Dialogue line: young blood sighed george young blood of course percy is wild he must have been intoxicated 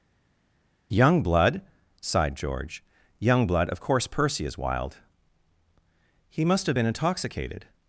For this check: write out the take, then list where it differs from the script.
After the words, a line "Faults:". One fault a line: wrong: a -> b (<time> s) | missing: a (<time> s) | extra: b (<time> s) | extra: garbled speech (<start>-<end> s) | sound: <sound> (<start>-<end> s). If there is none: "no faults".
young blood sighed george young blood of course percy is wild he must have been intoxicated
Faults:
no faults